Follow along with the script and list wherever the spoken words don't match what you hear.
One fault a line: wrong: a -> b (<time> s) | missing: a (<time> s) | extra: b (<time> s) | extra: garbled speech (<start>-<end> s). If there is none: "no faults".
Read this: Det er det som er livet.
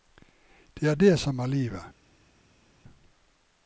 no faults